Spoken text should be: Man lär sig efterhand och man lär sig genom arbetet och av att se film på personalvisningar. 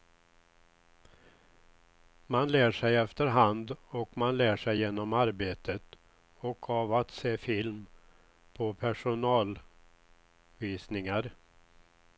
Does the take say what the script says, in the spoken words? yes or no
yes